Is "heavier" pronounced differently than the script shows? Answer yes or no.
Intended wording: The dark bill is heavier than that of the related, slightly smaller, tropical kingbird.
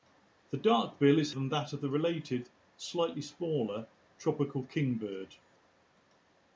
yes